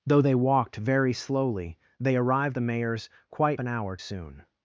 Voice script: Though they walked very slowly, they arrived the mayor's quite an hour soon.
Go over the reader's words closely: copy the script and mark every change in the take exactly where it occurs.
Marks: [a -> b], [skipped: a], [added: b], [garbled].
Though they walked very slowly, they arrived the mayor's quite an hour soon.